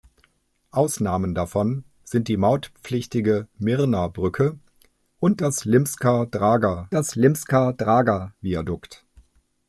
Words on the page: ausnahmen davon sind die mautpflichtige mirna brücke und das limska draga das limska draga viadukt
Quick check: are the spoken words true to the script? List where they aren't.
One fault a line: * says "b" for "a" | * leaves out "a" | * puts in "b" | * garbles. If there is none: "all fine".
all fine